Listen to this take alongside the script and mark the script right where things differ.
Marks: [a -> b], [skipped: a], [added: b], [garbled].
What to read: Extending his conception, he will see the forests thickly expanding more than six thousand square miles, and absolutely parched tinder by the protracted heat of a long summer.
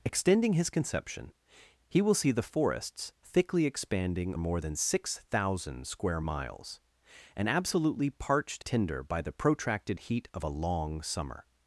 Extending his conception, he will see the forests thickly expanding more than six thousand square miles, and absolutely parched tinder by the protracted heat of a long summer.